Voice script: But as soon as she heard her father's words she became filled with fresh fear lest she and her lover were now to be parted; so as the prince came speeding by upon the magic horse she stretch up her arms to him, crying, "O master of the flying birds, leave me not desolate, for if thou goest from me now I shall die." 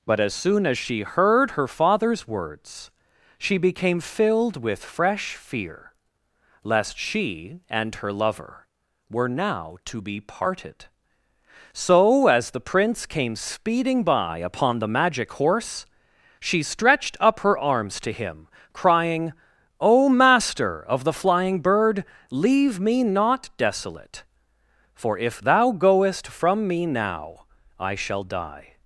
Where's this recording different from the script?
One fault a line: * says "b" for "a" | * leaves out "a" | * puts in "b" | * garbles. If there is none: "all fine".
* says "stretched" for "stretch"
* says "bird" for "birds"